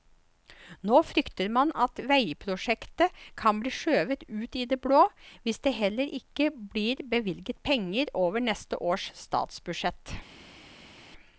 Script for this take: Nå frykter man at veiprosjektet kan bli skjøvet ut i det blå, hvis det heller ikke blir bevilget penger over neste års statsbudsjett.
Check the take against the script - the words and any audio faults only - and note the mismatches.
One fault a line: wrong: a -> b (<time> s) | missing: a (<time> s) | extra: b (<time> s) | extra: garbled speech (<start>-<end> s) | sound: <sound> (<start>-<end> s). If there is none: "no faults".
no faults